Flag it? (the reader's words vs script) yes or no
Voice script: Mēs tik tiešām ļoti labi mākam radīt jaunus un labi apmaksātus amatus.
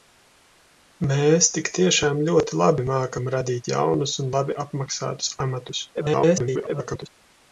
yes